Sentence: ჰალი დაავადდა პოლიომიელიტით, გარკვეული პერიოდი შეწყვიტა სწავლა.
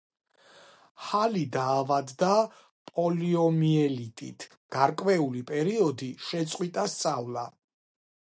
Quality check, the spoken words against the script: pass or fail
pass